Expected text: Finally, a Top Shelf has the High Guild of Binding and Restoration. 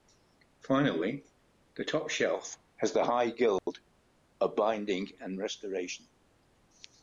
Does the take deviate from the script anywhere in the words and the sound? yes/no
yes